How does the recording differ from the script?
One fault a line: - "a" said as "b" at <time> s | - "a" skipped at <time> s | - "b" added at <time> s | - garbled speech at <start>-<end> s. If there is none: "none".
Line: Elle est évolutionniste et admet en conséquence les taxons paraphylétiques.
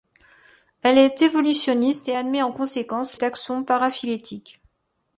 - "les" skipped at 3.2 s